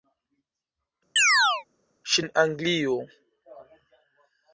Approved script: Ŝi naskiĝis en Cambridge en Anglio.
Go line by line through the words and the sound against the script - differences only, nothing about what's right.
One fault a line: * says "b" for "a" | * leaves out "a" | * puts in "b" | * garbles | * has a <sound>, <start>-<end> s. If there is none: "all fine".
* has a chirp, 1.2-1.6 s
* leaves out "naskiĝis en Cambridge"